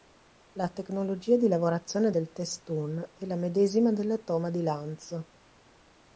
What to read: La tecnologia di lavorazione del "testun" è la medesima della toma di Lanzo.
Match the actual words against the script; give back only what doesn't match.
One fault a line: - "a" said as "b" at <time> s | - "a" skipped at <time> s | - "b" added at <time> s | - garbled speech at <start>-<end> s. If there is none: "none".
none